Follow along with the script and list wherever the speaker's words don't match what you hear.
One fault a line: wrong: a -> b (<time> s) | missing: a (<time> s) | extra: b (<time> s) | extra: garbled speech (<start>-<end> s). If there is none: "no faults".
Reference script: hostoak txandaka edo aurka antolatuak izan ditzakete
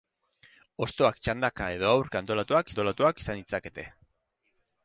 extra: antolatuak (2.7 s)